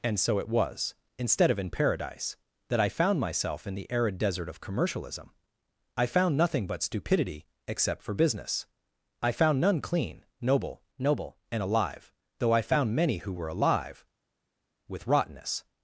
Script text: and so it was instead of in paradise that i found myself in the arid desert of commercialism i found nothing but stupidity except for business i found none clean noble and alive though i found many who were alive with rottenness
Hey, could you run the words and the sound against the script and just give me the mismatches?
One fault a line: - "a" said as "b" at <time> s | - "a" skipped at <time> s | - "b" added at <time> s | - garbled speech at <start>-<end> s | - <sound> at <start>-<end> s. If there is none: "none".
- "noble" added at 11.0 s